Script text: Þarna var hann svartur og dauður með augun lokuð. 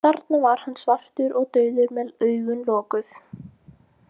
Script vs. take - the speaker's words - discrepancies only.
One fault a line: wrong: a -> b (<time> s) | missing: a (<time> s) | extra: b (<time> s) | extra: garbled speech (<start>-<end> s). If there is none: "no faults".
no faults